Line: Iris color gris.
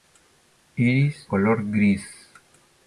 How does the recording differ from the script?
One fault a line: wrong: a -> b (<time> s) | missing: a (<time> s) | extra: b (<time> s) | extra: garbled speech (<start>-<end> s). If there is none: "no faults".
no faults